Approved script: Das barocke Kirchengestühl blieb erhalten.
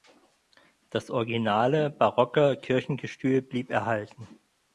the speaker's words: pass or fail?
fail